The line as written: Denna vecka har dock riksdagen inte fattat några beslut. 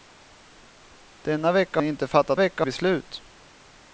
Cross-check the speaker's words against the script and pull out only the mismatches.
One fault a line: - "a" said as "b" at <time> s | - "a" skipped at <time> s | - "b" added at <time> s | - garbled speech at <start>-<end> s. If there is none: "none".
- "har dock riksdagen" skipped at 1.8 s
- "några" said as "vecka" at 2.4 s